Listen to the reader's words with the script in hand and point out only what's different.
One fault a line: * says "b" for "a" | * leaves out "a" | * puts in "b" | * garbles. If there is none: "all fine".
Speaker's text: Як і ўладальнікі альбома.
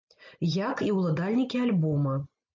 all fine